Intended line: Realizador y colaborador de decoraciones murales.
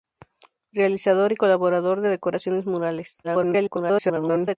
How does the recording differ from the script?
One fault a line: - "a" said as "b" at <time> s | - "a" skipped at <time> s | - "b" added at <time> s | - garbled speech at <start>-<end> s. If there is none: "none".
- garbled speech at 3.2-4.6 s